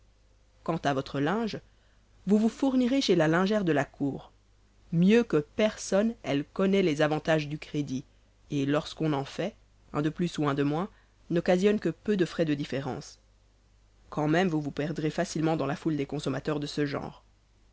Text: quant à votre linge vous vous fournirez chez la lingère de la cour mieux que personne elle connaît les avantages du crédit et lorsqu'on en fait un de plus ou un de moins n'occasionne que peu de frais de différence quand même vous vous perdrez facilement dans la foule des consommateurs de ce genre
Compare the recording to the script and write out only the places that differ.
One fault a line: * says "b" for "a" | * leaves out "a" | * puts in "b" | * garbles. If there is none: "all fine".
all fine